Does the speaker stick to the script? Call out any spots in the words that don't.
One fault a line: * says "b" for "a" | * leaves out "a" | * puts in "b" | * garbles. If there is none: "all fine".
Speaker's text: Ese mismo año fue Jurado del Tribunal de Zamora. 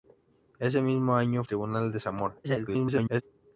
* leaves out "fue Jurado del"
* garbles